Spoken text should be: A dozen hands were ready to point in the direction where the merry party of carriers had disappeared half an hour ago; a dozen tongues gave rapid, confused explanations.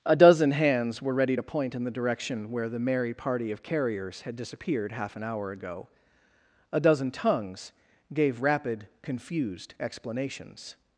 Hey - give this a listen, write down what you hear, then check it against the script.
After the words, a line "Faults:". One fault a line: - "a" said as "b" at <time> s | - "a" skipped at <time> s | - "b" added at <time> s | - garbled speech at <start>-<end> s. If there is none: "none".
A dozen hands were ready to point in the direction where the merry party of carriers had disappeared half an hour ago; a dozen tongues gave rapid, confused explanations.
Faults:
none